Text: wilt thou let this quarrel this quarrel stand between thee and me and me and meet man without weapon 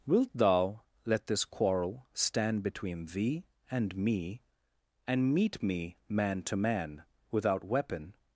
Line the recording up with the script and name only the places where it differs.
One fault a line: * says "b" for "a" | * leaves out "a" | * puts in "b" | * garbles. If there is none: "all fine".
* leaves out "this quarrel"
* puts in "meet"
* says "man to" for "and meet"